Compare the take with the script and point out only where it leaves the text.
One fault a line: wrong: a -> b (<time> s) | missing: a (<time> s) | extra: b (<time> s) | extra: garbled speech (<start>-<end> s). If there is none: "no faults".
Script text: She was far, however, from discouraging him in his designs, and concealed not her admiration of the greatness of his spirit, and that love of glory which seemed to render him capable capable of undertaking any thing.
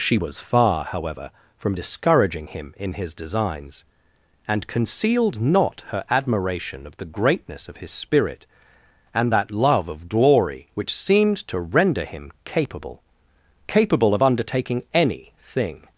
no faults